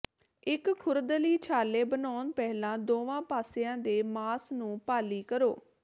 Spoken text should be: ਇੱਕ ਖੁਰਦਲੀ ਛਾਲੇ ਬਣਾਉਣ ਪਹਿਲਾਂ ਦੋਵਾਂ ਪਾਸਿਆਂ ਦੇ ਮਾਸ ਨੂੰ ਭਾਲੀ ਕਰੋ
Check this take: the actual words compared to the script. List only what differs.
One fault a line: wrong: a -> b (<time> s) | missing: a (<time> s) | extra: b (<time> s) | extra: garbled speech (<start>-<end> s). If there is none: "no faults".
no faults